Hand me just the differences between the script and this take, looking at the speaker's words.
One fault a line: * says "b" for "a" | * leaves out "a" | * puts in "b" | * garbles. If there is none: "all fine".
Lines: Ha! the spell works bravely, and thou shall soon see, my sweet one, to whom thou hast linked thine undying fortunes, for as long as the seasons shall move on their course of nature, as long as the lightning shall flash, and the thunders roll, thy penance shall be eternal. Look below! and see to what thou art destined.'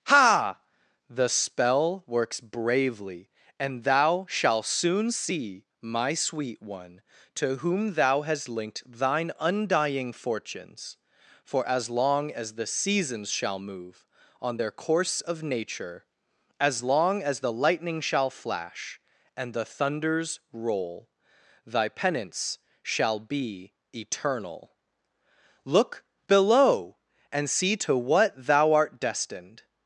* says "shalt" for "shall"